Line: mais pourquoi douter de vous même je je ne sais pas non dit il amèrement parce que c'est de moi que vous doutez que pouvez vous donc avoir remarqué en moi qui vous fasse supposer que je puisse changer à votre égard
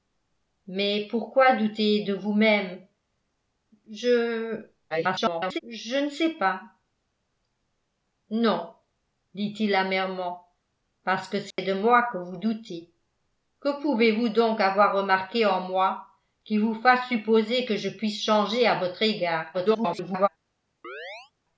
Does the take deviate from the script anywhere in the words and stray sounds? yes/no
yes